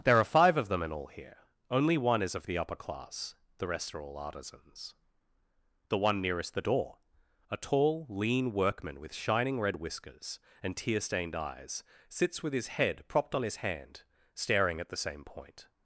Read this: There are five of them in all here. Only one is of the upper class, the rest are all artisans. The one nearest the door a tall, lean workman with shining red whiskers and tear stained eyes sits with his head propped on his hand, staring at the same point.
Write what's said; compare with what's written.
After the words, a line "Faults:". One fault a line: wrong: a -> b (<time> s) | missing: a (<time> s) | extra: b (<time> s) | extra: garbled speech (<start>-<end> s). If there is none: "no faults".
There are five of them in all here. Only one is of the upper class, the rest are all artisans. The one nearest the door a tall, lean workman with shining red whiskers and tear stained eyes sits with his head propped on his hand, staring at the same point.
Faults:
no faults